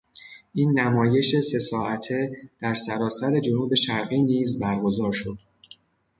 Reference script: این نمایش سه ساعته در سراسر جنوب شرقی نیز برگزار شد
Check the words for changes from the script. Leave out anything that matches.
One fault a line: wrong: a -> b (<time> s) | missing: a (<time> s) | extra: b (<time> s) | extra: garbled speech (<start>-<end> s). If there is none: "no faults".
no faults